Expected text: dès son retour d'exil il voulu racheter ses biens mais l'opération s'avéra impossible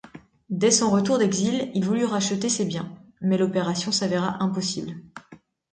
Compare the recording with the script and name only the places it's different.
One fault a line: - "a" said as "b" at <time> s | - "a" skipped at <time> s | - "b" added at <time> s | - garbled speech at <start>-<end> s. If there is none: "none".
none